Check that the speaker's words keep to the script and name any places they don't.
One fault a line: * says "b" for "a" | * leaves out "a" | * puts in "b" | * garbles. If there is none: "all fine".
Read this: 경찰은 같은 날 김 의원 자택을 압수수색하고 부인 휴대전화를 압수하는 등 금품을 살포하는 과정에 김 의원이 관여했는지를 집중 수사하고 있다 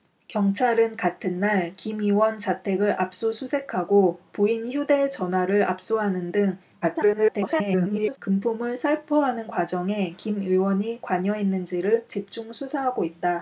* garbles